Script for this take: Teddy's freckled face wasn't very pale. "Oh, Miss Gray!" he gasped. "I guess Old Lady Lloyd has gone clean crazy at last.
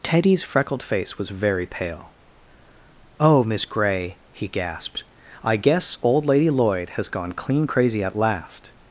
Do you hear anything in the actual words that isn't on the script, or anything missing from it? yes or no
yes